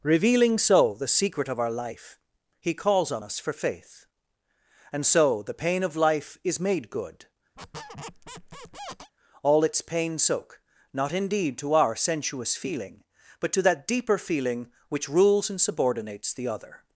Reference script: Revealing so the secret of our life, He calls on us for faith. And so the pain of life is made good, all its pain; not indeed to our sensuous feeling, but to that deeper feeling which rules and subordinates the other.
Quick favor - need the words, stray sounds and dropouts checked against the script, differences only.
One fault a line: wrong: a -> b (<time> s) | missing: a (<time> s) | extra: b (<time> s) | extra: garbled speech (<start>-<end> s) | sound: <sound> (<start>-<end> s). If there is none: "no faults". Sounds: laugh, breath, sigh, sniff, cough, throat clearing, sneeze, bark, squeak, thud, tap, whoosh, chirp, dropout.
sound: squeak (7.6-9.1 s)
extra: soak (10.2 s)